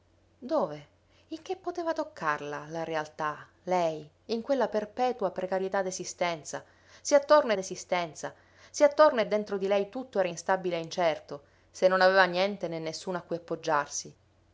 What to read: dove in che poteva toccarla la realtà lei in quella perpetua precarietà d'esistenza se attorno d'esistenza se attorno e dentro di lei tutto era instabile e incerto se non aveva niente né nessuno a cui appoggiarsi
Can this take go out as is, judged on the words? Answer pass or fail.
pass